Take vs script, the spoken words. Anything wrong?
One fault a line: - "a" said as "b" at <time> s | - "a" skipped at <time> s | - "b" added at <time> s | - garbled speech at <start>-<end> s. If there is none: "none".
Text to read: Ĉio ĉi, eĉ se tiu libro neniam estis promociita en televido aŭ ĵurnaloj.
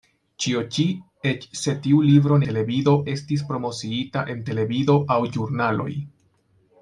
- "neniam" said as "televido" at 2.5 s